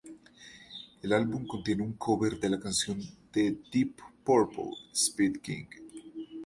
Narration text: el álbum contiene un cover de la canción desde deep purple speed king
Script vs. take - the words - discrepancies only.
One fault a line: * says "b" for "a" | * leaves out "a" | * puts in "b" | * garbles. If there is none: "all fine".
* says "de" for "desde"